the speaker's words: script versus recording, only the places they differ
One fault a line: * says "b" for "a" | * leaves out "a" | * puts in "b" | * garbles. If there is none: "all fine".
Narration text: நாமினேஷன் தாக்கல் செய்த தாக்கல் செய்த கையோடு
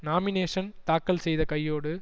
* leaves out "தாக்கல் செய்த"